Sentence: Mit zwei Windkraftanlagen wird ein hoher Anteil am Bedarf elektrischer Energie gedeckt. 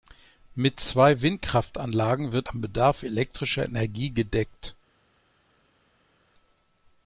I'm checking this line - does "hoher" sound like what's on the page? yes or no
no